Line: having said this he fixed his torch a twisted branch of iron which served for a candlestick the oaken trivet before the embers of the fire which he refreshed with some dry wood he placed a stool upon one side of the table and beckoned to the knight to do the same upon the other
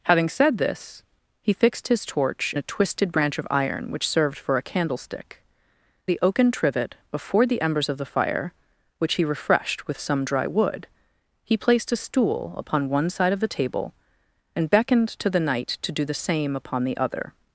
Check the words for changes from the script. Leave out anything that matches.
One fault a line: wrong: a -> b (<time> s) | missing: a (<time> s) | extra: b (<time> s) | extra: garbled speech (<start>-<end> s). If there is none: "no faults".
no faults